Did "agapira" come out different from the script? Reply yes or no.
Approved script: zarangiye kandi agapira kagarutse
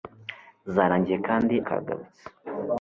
yes